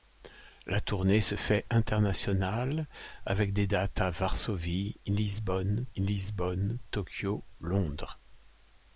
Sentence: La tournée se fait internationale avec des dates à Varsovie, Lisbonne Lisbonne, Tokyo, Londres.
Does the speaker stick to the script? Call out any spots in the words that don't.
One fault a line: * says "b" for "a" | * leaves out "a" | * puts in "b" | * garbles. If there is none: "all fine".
all fine